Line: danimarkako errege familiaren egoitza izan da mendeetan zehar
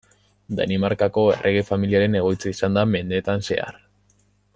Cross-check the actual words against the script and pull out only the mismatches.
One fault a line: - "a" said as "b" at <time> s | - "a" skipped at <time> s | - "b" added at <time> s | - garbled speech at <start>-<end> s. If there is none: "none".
none